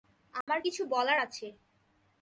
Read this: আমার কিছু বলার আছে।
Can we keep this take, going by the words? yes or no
yes